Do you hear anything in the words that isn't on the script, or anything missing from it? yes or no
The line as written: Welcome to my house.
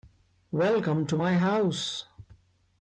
no